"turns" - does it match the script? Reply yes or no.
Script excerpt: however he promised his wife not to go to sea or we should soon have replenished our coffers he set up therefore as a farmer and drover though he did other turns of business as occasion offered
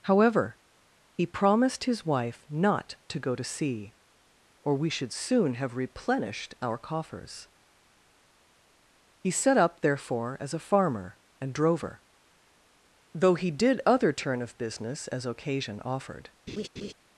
no